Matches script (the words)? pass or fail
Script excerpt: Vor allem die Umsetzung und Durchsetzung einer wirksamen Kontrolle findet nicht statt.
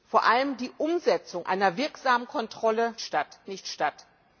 fail